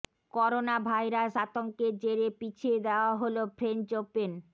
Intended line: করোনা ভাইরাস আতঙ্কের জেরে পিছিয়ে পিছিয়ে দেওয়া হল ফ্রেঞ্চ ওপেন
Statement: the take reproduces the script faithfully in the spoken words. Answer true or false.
false